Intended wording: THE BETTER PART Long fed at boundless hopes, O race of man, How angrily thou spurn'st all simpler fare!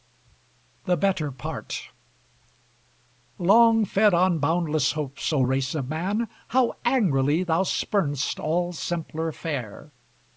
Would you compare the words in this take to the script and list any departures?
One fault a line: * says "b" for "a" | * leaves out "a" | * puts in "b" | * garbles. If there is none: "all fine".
* says "on" for "at"